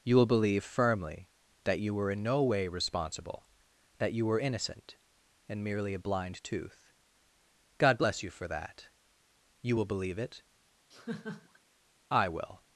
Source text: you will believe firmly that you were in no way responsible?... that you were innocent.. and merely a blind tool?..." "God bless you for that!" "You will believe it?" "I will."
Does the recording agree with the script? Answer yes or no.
no